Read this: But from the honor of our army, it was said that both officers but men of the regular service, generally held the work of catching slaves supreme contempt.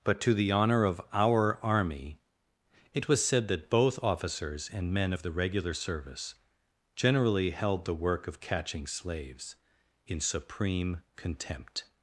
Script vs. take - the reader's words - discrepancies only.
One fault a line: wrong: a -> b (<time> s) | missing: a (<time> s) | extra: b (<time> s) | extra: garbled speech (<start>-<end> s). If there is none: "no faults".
wrong: from -> to (0.2 s)
wrong: but -> and (4.7 s)
extra: in (10.1 s)